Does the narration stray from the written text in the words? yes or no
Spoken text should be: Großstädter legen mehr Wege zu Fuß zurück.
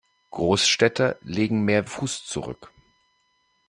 yes